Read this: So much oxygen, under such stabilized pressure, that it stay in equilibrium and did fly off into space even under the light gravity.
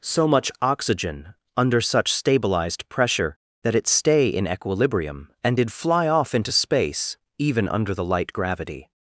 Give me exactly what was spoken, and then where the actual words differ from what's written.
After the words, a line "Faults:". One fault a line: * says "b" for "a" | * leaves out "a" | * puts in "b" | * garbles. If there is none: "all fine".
So much oxygen, under such stabilized pressure, that it stay in equilibrium and did fly off into space even under the light gravity.
Faults:
all fine